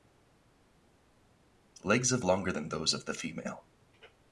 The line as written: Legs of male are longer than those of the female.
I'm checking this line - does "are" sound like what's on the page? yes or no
no